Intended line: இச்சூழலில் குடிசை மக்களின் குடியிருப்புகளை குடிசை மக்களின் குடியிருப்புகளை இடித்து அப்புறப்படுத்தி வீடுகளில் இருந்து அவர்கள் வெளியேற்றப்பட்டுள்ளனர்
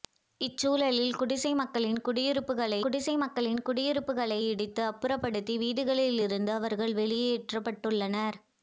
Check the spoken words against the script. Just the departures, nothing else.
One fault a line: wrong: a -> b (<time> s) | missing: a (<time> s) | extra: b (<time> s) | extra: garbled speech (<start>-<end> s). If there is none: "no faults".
no faults